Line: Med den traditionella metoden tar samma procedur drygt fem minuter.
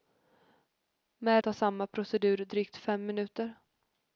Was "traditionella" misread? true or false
true